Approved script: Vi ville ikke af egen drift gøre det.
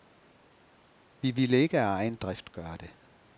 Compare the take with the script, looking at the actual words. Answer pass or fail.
pass